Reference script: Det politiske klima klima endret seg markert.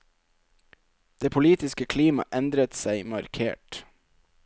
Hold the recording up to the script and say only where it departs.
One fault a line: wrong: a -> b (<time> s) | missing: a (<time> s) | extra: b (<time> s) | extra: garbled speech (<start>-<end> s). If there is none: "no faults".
missing: klima (2.2 s)